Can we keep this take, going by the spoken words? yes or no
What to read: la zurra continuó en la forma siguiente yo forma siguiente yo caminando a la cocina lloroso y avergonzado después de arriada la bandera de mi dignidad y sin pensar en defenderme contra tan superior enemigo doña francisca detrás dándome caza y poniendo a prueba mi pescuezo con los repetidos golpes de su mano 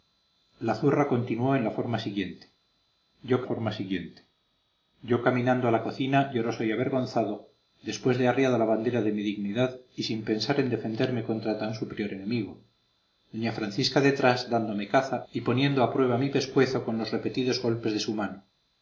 yes